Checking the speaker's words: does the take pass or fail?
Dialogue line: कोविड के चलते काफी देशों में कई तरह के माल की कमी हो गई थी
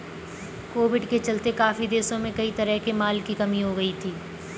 pass